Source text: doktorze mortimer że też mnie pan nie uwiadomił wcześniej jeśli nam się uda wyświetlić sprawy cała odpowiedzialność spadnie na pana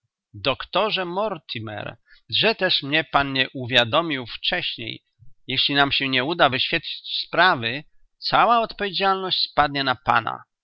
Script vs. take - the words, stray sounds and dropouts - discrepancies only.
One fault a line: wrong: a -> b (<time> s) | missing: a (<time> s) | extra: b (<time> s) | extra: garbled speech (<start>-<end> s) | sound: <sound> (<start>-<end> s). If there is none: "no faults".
extra: nie (6.1 s)